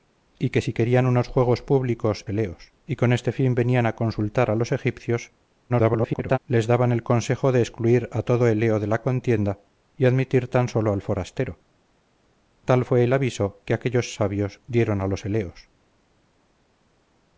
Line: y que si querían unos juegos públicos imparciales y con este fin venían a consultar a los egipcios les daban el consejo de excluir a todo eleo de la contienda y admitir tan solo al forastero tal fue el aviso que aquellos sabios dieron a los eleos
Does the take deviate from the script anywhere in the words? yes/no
yes